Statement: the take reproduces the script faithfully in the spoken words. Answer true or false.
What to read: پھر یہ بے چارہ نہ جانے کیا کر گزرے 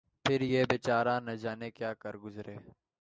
true